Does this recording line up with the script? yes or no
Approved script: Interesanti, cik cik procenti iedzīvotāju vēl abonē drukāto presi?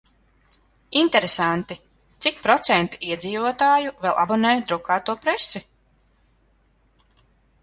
no